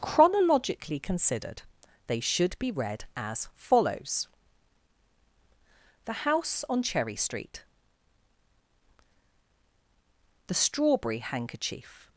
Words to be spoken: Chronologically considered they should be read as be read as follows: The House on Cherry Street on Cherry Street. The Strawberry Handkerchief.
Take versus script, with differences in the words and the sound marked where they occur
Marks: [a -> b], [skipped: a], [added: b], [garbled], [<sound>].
Chronologically considered they should be read as [skipped: be read as] follows: The House on Cherry Street [skipped: on Cherry Street.] The Strawberry Handkerchief.